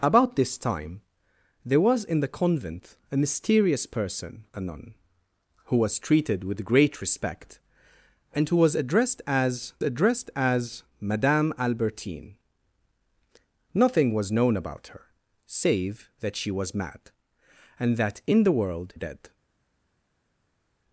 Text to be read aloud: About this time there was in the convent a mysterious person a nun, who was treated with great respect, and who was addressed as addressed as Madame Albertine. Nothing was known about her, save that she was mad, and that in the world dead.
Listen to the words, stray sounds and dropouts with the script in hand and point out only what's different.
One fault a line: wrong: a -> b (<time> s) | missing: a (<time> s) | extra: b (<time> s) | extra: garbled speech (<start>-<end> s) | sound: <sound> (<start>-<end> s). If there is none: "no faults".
no faults